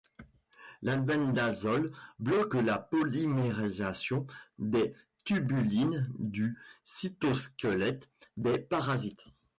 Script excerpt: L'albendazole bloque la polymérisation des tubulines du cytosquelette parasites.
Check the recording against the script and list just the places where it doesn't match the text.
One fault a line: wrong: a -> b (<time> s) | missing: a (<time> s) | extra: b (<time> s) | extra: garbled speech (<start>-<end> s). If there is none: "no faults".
extra: des (8.4 s)